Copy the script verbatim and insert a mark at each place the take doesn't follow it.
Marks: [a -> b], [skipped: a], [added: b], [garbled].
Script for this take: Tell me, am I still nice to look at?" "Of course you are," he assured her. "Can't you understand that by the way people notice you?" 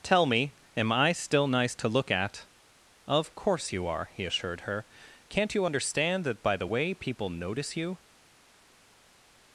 Tell me, am I still nice to look at?" "Of course you are," he assured her. "Can't you understand that by the way people notice you?"